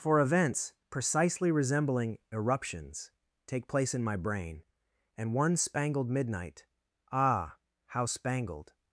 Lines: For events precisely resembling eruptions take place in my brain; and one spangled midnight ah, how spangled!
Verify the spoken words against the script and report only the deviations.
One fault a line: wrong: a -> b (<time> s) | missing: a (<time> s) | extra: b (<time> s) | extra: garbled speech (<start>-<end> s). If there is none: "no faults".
no faults